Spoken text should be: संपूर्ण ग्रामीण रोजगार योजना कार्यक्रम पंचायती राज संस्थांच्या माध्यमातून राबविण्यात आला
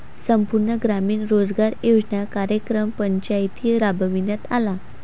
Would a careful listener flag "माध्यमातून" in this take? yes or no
yes